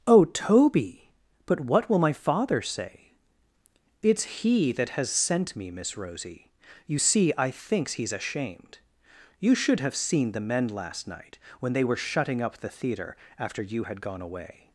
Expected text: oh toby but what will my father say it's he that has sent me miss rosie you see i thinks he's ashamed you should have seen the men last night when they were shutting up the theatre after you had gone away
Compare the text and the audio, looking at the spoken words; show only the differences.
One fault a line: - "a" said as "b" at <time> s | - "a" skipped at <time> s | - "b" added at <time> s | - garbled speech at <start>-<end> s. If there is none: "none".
none